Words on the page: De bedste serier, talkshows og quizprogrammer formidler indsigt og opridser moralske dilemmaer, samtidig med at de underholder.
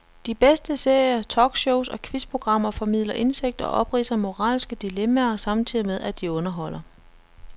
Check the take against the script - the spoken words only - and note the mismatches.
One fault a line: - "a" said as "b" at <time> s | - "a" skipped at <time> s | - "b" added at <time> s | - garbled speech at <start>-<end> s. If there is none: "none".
none